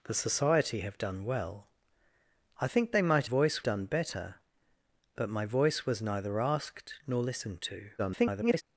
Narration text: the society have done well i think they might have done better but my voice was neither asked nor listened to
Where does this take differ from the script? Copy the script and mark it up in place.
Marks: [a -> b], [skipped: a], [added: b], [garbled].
the society have done well i think they might [have -> voice] done better but my voice was neither asked nor listened to [garbled]